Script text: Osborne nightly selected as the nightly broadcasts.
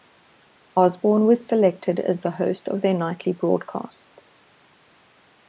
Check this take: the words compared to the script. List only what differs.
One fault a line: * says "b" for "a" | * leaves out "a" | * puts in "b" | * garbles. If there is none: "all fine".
* says "was" for "nightly"
* puts in "host of their"